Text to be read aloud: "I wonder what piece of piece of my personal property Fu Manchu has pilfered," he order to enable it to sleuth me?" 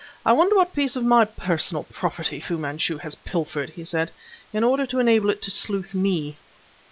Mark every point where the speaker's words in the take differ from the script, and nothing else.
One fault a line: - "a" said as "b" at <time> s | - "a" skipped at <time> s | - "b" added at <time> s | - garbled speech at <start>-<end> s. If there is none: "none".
- "piece of" skipped at 1.1 s
- "said in" added at 3.9 s